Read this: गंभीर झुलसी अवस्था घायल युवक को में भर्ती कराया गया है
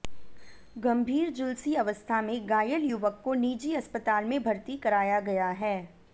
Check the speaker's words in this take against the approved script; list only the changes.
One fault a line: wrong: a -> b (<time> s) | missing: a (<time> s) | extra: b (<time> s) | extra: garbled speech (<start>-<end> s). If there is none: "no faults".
extra: में (2.2 s)
extra: निजी अस्पताल (3.3 s)